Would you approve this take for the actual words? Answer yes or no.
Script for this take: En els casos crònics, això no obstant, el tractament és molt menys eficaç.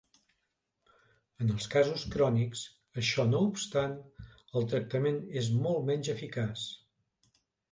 yes